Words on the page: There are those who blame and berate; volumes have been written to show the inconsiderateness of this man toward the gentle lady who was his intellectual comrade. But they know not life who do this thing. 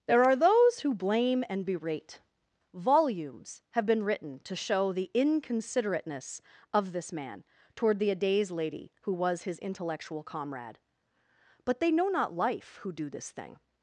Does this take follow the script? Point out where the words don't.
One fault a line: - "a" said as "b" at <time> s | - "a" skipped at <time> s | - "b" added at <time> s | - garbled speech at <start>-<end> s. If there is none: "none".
- "gentle" said as "adays" at 8.1 s